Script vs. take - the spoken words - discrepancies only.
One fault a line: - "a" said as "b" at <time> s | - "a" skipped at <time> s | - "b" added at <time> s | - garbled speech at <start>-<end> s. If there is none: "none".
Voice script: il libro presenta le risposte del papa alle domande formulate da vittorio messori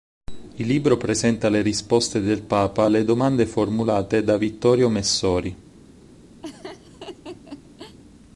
none